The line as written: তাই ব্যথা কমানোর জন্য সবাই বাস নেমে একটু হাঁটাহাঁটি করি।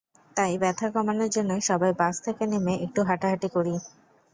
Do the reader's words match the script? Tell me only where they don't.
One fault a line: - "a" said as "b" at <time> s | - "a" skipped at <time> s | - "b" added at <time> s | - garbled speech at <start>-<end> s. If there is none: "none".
- "থেকে" added at 2.3 s